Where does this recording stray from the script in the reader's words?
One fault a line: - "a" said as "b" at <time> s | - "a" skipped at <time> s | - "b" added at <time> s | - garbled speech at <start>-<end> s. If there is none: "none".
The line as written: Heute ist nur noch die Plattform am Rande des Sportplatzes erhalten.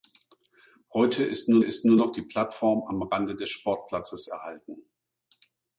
- "ist nur" added at 1.6 s